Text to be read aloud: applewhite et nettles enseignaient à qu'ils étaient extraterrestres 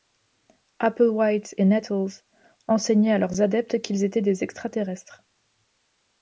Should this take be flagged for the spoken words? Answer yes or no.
yes